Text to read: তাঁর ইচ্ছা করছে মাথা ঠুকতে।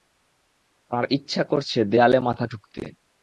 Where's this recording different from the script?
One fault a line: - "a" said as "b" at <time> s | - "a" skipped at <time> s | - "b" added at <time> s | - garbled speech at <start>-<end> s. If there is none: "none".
- "দেয়ালে" added at 1.8 s